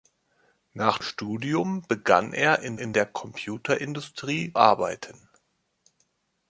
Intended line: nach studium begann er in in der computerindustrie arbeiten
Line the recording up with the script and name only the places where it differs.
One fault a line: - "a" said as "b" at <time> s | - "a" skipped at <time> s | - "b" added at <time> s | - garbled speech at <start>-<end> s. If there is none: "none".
none